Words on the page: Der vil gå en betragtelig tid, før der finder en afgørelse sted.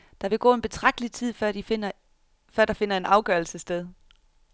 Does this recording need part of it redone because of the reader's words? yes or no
no